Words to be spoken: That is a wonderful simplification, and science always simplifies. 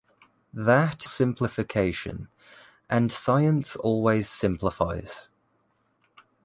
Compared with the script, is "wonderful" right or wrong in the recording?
wrong